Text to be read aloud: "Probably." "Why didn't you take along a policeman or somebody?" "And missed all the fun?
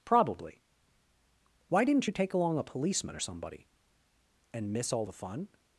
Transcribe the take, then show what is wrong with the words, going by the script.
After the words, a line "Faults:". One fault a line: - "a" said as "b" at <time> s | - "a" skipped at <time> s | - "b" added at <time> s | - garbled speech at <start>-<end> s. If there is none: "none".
"Probably." "Why didn't you take along a policeman or somebody?" "And miss all the fun?
Faults:
- "missed" said as "miss" at 4.7 s